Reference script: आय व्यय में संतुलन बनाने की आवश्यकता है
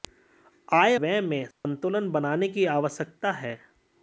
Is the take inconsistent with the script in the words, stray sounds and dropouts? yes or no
yes